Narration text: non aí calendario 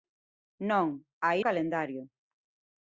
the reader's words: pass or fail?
pass